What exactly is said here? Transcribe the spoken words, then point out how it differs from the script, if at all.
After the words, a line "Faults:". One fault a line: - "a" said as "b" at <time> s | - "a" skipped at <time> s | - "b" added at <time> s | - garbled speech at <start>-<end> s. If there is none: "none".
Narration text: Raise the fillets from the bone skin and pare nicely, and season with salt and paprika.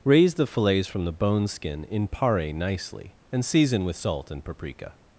Raise the fillets from the bone skin in pare nicely, and season with salt and paprika.
Faults:
- "and" said as "in" at 1.8 s